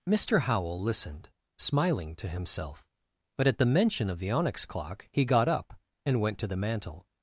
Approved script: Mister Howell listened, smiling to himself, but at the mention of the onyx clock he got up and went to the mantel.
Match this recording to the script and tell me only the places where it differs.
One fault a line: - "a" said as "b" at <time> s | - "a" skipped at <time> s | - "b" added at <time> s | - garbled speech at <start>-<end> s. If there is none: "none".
none